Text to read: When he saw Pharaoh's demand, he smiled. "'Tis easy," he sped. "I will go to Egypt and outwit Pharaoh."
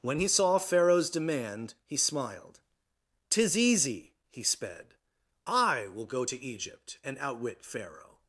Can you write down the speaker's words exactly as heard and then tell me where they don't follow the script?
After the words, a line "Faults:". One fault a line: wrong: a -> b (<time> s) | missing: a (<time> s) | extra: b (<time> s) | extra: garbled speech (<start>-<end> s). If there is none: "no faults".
When he saw Pharaoh's demand, he smiled. "'Tis easy," he sped. "I will go to Egypt and outwit Pharaoh."
Faults:
no faults